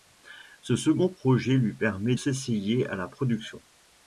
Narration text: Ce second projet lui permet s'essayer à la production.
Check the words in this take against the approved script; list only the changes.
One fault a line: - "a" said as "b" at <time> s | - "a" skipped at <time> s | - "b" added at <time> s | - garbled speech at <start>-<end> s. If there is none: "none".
none